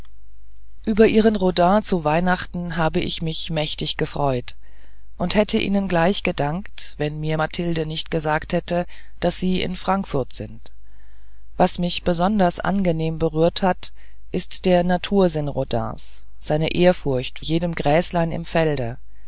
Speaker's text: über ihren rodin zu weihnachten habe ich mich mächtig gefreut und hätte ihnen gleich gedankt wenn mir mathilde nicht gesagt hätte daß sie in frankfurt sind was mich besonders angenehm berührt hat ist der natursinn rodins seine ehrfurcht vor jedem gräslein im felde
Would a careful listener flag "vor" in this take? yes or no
yes